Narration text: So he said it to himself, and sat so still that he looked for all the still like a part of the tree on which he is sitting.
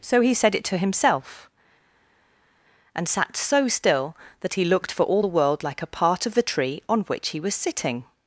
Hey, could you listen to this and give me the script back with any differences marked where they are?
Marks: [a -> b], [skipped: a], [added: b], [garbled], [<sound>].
So he said it to himself, and sat so still that he looked for all the [still -> world] like a part of the tree on which he [is -> was] sitting.